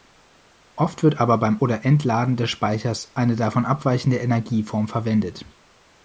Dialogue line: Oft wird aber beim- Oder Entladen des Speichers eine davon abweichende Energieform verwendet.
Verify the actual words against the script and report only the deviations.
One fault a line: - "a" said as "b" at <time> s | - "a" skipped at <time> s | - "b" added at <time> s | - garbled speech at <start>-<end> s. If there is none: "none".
none